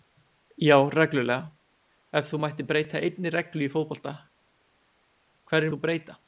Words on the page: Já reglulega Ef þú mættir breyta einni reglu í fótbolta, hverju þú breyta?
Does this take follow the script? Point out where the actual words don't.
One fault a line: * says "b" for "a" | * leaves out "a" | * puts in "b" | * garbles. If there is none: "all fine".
all fine